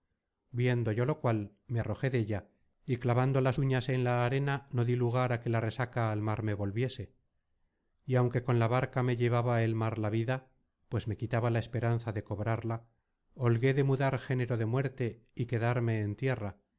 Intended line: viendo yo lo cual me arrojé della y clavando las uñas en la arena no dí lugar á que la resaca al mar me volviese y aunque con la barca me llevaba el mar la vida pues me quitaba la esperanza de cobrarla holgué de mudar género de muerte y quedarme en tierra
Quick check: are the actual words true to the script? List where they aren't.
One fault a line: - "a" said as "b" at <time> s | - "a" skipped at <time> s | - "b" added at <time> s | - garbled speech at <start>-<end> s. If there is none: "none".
none